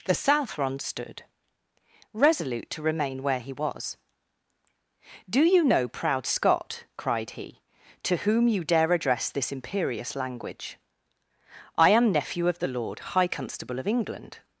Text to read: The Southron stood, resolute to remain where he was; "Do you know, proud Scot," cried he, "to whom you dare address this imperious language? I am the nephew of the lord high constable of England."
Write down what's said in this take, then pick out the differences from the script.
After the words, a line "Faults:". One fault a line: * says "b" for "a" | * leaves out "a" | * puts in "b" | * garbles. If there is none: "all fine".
The Southron stood, resolute to remain where he was; "Do you know, proud Scot," cried he, "to whom you dare address this imperious language? I am nephew of the lord high constable of England."
Faults:
* leaves out "the"